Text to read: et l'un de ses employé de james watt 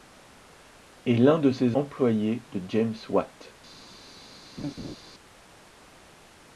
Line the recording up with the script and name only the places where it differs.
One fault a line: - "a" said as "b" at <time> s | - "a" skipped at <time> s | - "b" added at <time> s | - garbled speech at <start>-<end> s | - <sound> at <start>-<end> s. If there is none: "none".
- laugh at 4.6-5.0 s